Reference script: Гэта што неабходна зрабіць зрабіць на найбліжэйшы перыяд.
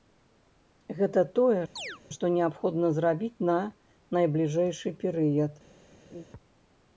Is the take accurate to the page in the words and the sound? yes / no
no